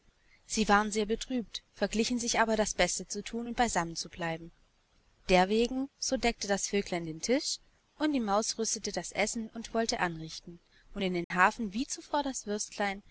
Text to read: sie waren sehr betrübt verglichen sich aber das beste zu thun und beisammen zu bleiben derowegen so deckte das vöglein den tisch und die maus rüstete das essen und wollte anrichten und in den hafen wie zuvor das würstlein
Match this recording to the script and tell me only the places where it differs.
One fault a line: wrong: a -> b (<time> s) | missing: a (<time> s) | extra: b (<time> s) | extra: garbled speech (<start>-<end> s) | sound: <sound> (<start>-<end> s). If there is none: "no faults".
sound: dropout (11.2-11.3 s)